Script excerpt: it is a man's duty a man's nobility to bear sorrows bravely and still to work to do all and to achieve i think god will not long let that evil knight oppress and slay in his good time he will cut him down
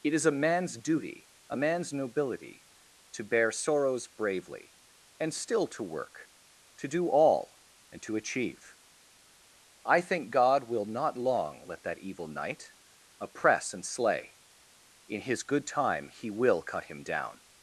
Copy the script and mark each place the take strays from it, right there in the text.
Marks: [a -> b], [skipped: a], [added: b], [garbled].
it is a man's duty a man's nobility to bear sorrows bravely and still to work to do all and to achieve i think god will not long let that evil knight oppress and slay in his good time he will cut him down